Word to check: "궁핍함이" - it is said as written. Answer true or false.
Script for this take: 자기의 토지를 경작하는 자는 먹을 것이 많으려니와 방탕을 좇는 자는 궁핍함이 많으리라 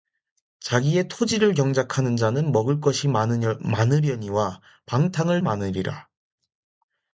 false